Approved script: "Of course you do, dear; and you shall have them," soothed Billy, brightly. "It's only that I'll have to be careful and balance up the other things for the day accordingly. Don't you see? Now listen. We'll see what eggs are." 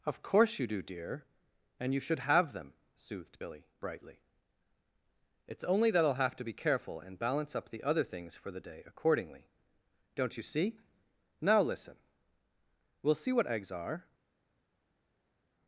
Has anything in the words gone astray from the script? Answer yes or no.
yes